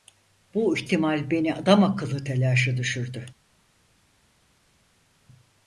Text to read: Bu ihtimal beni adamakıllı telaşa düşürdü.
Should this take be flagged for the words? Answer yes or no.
no